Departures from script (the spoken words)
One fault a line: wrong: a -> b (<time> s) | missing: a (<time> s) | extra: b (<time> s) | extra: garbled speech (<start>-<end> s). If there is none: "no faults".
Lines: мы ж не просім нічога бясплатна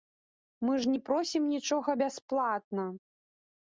no faults